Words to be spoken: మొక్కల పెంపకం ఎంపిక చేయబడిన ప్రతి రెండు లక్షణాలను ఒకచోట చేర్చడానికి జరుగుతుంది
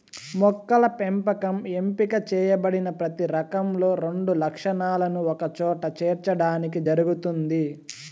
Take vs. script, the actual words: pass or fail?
fail